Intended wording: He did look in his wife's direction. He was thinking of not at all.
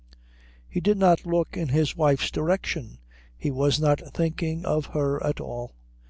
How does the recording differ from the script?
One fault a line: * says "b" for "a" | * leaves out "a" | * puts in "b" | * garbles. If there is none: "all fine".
* puts in "not"
* puts in "not"
* says "her" for "not"